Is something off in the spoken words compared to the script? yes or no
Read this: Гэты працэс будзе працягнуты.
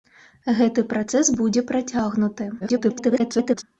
yes